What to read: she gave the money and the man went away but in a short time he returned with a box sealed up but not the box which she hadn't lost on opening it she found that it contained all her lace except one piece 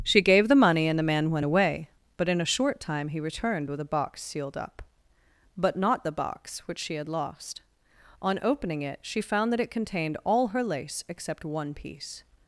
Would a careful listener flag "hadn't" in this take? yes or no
yes